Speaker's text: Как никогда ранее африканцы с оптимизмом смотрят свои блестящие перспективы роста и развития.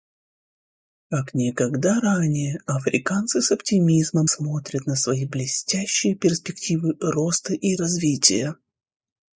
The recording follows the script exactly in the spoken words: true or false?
false